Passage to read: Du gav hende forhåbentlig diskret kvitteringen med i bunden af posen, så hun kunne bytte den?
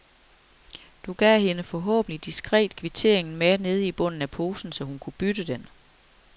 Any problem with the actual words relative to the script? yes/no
yes